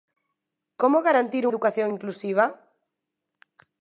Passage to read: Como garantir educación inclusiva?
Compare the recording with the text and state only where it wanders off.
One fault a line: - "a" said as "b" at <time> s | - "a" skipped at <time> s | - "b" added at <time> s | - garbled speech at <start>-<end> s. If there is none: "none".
none